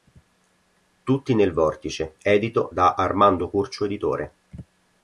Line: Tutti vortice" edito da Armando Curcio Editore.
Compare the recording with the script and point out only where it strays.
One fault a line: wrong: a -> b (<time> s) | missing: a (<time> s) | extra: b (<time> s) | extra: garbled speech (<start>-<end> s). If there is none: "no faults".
extra: nel (1.4 s)